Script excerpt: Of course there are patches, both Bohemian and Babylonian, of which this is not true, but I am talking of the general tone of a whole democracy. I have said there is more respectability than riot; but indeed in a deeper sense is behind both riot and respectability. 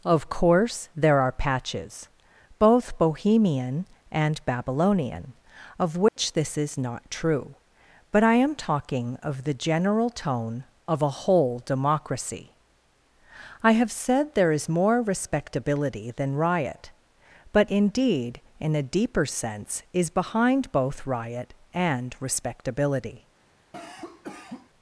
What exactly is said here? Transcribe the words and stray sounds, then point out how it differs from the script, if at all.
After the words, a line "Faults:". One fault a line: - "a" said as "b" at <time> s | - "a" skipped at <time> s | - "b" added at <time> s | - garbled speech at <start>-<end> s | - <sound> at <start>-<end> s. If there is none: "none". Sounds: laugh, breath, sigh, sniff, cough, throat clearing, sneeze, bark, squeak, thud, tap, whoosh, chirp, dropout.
Of course there are patches, both Bohemian and Babylonian, of which this is not true, but I am talking of the general tone of a whole democracy. I have said there is more respectability than riot; but indeed in a deeper sense is behind both riot and respectability.
Faults:
- dropout at 6.1-6.2 s
- cough at 23.7-24.7 s